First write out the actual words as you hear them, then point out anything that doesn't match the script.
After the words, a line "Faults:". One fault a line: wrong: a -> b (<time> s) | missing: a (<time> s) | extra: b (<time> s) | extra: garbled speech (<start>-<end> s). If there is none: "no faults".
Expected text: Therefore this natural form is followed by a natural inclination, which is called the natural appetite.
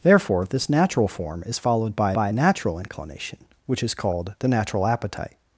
Therefore this natural form is followed by by a natural inclination, which is called the natural appetite.
Faults:
extra: by (2.1 s)